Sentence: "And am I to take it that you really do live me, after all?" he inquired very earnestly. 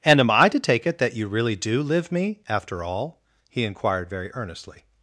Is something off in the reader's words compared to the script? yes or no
no